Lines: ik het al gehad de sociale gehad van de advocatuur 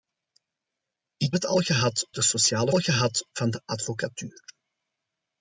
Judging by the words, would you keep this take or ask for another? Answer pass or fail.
pass